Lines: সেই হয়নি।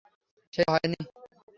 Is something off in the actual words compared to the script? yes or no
no